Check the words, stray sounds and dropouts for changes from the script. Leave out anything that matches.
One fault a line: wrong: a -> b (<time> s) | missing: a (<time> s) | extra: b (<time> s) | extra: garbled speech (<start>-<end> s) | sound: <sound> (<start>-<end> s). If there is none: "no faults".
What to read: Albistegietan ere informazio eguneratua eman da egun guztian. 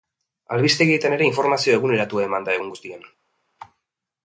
no faults